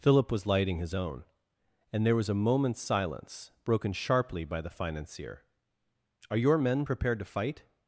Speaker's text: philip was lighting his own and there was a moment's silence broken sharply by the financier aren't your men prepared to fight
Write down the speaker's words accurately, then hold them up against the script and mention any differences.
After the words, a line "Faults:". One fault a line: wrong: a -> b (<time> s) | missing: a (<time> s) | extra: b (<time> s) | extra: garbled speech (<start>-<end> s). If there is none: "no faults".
philip was lighting his own and there was a moment's silence broken sharply by the financier are your men prepared to fight
Faults:
wrong: aren't -> are (6.3 s)